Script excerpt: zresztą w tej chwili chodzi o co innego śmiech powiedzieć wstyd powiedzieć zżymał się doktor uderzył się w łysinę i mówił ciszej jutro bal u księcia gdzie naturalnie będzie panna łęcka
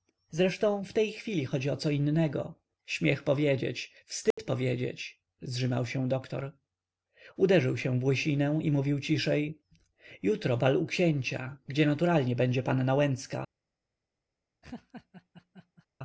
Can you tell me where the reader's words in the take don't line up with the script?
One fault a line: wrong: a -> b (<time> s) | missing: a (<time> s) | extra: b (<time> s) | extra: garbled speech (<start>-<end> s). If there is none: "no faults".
no faults